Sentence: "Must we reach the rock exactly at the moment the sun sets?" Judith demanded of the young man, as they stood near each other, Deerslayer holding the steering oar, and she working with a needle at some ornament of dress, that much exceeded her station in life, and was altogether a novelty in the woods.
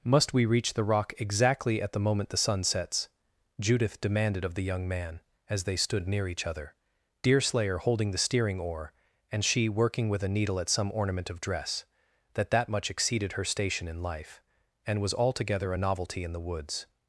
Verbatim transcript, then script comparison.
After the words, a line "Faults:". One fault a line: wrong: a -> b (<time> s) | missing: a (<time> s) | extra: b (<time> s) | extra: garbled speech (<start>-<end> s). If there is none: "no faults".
"Must we reach the rock exactly at the moment the sun sets?" Judith demanded of the young man, as they stood near each other, Deerslayer holding the steering oar, and she working with a needle at some ornament of dress, that that much exceeded her station in life, and was altogether a novelty in the woods.
Faults:
extra: that (12.5 s)